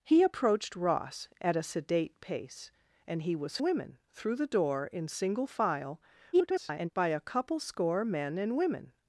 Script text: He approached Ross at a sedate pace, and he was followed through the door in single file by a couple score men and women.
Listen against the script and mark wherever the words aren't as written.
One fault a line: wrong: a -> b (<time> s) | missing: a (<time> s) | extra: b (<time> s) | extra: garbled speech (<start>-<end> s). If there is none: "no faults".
wrong: followed -> women (3.6 s)
extra: garbled speech (6.3-6.9 s)